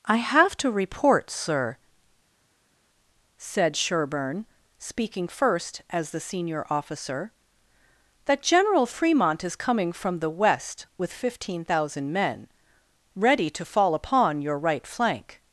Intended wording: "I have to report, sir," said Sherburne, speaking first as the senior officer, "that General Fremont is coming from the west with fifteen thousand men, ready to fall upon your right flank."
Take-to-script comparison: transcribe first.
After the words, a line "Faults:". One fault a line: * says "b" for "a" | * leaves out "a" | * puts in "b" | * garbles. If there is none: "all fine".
"I have to report, sir," said Sherburne, speaking first as the senior officer, "that General Fremont is coming from the west with fifteen thousand men, ready to fall upon your right flank."
Faults:
all fine